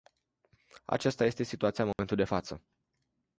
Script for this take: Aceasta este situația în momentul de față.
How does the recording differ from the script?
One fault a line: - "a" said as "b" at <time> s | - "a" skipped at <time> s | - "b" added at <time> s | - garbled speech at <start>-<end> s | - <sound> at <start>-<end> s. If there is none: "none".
- dropout at 1.9-2.0 s